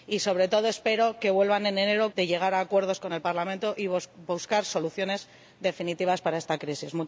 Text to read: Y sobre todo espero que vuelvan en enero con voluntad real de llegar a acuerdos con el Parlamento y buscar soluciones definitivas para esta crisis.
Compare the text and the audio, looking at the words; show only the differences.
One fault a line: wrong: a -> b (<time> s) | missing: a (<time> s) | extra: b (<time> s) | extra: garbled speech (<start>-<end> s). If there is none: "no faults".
missing: con voluntad real (2.1 s)